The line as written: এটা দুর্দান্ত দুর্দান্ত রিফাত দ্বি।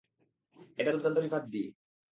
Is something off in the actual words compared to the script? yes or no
yes